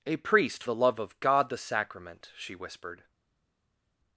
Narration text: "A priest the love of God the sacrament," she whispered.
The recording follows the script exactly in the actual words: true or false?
true